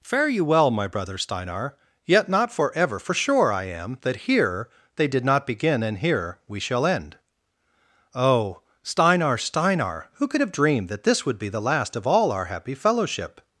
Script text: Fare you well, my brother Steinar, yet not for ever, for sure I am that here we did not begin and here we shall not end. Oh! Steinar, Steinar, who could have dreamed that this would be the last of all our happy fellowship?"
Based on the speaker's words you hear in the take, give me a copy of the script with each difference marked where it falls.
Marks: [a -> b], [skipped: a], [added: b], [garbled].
Fare you well, my brother Steinar, yet not for ever, for sure I am that here [we -> they] did not begin and here we shall [skipped: not] end. Oh! Steinar, Steinar, who could have dreamed that this would be the last of all our happy fellowship?"